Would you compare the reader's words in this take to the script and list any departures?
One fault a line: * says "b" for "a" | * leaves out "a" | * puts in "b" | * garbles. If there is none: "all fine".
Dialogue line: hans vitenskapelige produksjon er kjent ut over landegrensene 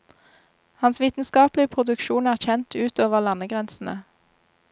all fine